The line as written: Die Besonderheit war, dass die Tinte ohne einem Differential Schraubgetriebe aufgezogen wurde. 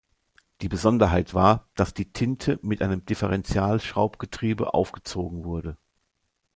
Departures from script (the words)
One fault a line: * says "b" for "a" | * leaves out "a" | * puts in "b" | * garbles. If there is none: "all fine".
* says "mit" for "ohne"